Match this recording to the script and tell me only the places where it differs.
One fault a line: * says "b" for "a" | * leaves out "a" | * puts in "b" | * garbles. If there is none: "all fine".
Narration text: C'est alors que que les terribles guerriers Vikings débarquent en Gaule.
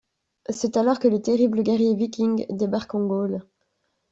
* leaves out "que"